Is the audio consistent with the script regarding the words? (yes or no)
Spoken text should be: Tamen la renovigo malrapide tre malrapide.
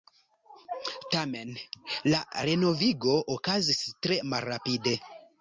no